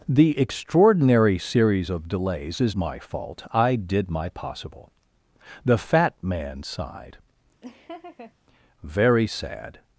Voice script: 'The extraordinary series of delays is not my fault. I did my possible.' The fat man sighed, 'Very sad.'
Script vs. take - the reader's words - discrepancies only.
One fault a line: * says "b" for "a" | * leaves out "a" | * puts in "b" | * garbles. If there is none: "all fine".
* leaves out "not"